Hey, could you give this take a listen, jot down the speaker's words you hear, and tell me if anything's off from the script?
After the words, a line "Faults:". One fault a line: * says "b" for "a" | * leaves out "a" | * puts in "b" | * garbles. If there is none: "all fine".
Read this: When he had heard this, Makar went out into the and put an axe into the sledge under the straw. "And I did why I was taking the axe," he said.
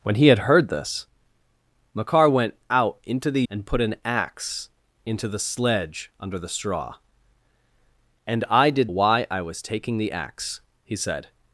When he had heard this, Makar went out into the and put an axe into the sledge under the straw. "And I did why I was taking the axe," he said.
Faults:
all fine